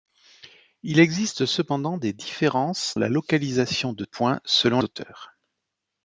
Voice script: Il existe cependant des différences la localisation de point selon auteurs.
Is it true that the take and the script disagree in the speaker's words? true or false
false